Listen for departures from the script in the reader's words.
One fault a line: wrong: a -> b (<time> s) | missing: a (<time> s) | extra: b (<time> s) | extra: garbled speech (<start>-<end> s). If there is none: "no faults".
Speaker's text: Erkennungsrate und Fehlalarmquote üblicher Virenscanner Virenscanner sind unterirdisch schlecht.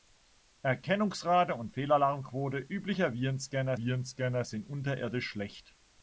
no faults